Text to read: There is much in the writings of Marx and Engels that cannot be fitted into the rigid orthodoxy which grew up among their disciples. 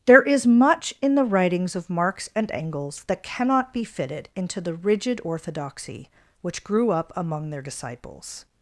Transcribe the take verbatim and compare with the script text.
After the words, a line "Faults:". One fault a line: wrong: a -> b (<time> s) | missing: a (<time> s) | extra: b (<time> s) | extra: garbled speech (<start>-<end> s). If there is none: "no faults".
There is much in the writings of Marx and Engels that cannot be fitted into the rigid orthodoxy which grew up among their disciples.
Faults:
no faults